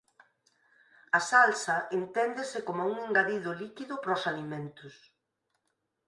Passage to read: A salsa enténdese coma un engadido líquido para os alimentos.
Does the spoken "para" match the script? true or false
true